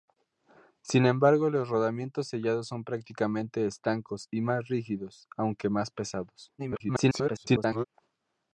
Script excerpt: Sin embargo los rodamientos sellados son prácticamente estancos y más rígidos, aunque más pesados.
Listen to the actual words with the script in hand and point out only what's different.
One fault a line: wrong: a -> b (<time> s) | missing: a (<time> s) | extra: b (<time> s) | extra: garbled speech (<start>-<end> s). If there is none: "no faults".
extra: garbled speech (6.6-7.8 s)